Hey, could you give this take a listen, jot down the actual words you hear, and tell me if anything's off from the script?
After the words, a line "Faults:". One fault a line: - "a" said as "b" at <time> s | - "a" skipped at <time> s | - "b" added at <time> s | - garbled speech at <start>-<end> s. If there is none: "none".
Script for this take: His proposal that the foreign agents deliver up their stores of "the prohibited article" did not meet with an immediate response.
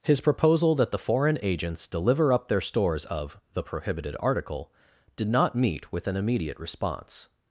His proposal that the foreign agents deliver up their stores of "the prohibited article" did not meet with an immediate response.
Faults:
none